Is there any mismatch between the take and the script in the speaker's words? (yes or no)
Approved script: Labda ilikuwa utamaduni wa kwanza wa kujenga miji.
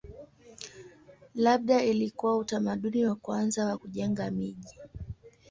no